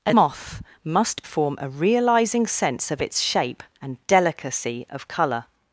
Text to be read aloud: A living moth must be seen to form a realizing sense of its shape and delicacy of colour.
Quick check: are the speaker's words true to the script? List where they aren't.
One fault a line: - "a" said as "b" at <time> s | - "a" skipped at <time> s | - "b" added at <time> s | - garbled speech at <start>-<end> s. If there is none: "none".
- "living" skipped at 0.1 s
- "be seen to" skipped at 1.2 s